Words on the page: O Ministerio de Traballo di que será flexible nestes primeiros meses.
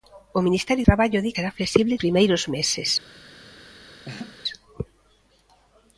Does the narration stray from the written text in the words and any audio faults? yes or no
yes